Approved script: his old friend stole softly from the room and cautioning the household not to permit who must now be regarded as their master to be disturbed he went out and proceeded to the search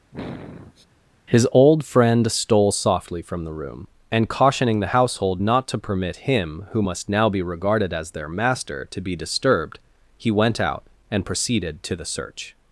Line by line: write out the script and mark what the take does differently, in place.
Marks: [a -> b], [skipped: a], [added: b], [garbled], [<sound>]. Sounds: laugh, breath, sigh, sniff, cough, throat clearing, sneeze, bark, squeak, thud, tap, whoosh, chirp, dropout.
[sniff] his old friend stole softly from the room and cautioning the household not to permit [added: him] who must now be regarded as their master to be disturbed he went out and proceeded to the search